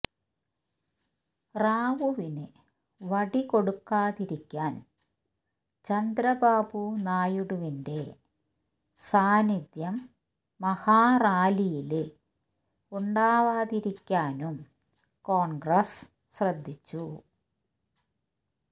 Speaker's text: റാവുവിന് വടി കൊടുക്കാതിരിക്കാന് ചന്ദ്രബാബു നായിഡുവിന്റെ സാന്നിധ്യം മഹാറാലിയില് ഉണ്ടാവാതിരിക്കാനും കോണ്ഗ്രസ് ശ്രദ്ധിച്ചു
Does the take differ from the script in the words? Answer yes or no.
no